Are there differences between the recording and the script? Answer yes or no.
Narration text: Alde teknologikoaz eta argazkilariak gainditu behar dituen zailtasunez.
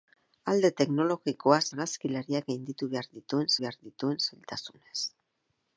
yes